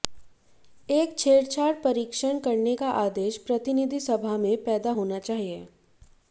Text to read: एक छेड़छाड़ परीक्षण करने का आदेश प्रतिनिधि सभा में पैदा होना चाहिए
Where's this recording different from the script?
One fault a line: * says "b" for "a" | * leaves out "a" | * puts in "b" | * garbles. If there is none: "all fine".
all fine